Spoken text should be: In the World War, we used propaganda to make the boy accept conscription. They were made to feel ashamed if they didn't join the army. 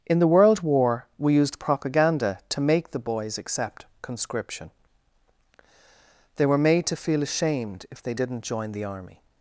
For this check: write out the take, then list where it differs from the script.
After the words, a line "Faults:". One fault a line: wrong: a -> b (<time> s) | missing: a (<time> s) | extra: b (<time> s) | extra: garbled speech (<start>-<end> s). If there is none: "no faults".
In the World War, we used propaganda to make the boys accept conscription. They were made to feel ashamed if they didn't join the army.
Faults:
wrong: boy -> boys (3.0 s)